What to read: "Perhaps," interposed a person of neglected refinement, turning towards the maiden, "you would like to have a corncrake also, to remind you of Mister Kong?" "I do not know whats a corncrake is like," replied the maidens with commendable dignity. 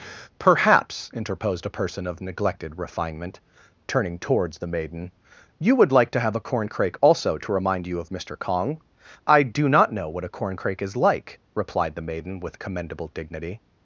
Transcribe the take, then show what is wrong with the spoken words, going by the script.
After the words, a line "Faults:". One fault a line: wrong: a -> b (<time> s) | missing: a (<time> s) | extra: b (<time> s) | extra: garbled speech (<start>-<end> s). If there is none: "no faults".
"Perhaps," interposed a person of neglected refinement, turning towards the maiden, "you would like to have a corncrake also, to remind you of Mister Kong?" "I do not know what a corncrake is like," replied the maiden with commendable dignity.
Faults:
wrong: whats -> what (10.1 s)
wrong: maidens -> maiden (12.1 s)